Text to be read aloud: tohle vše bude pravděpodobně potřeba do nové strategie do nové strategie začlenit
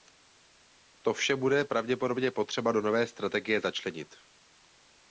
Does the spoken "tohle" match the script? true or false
false